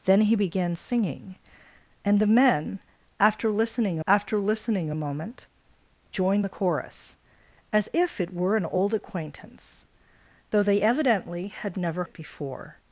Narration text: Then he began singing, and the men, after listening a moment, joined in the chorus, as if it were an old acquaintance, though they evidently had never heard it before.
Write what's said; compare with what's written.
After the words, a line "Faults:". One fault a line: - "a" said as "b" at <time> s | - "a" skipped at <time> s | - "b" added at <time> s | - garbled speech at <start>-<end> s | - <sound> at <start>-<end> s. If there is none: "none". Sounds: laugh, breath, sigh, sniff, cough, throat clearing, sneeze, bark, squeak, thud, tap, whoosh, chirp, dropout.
Then he began singing, and the men, after listening after listening a moment, joined the chorus, as if it were an old acquaintance, though they evidently had never it before.
Faults:
- "after listening" added at 4.1 s
- "in" skipped at 6.5 s
- "heard" skipped at 12.0 s